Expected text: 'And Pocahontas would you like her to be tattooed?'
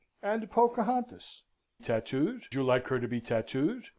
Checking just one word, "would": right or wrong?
wrong